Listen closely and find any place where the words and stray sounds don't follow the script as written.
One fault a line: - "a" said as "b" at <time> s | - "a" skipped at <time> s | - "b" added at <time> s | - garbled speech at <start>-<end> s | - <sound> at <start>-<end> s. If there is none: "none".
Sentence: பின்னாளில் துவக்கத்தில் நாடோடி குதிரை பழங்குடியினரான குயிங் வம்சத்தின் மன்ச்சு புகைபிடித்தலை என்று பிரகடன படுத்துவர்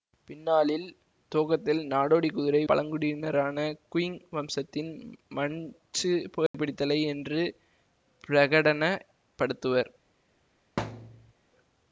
- dropout at 6.5-6.5 s
- thud at 10.8-11.3 s